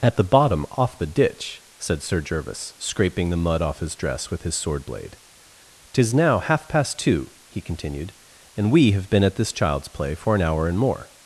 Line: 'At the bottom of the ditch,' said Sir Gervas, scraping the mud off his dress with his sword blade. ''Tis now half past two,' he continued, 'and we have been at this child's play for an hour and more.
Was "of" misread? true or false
true